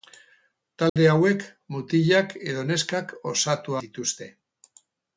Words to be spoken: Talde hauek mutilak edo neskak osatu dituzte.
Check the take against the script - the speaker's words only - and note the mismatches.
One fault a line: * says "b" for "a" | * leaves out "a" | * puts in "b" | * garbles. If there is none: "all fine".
all fine